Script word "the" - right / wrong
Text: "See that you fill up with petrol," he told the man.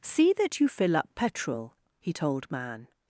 wrong